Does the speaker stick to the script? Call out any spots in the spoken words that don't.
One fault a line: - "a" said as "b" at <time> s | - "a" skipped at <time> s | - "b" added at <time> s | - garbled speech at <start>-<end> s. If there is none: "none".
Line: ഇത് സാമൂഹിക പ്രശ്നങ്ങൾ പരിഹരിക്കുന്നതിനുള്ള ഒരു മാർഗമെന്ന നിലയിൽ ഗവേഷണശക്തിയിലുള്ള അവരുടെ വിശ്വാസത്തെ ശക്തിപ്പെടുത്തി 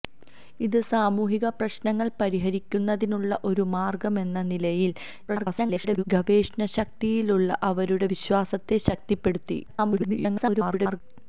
- garbled speech at 5.3-6.0 s
- garbled speech at 9.7-11.0 s